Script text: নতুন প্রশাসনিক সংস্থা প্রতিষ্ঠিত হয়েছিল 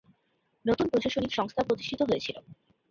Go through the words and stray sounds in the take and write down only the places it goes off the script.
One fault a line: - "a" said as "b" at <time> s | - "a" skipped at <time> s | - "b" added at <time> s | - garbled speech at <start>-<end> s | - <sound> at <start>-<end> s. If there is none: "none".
none